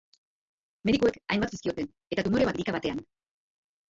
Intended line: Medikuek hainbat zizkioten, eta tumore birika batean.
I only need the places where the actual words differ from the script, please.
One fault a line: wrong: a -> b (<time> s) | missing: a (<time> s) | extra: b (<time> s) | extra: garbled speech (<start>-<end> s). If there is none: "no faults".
no faults